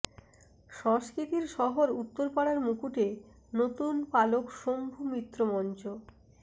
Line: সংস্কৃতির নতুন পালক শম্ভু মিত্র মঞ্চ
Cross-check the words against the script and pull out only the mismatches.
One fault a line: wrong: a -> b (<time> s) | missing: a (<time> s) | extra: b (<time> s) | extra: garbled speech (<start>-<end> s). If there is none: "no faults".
extra: শহর উত্তরপাড়ার মুকুটে (1.6 s)